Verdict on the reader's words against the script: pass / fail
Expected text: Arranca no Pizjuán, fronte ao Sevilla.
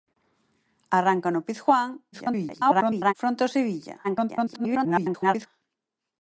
fail